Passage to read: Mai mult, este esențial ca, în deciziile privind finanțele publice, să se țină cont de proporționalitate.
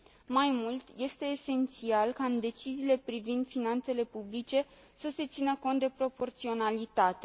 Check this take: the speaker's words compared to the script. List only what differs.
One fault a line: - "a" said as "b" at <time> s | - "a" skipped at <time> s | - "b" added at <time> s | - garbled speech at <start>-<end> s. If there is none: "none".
none